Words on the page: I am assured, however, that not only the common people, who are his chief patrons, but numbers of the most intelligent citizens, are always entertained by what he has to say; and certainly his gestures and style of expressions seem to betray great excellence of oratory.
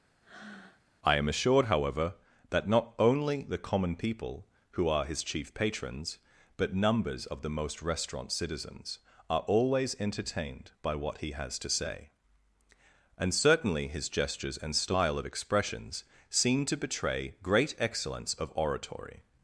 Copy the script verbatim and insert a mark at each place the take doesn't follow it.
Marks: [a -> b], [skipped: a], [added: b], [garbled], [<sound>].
[breath] I am assured, however, that not only the common people, who are his chief patrons, but numbers of the most [intelligent -> restaurant] citizens, are always entertained by what he has to say; and certainly his gestures and style of expressions seem to betray great excellence of oratory.